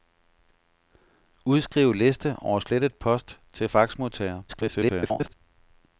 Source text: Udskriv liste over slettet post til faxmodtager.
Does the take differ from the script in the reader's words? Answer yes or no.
yes